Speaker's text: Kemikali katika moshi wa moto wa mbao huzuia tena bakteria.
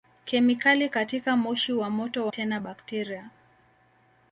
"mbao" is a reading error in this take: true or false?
true